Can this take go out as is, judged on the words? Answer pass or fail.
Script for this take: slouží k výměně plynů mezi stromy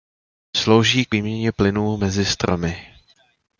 pass